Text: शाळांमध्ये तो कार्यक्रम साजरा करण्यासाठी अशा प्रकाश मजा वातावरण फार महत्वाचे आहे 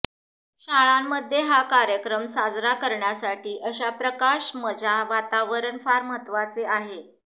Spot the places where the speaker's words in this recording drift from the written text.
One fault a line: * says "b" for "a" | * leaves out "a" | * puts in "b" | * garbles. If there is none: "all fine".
* says "हा" for "तो"